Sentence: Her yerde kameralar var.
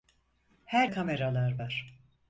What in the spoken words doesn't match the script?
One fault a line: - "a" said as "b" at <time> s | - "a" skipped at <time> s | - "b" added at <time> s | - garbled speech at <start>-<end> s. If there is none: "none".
- "yerde" skipped at 0.9 s